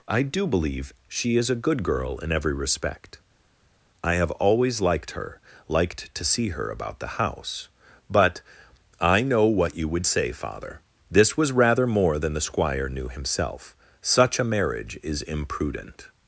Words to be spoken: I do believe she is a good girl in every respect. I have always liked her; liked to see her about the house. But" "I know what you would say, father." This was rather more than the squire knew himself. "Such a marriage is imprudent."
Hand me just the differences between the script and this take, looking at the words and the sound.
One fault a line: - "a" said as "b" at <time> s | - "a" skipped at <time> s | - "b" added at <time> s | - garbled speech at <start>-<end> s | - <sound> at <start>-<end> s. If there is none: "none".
none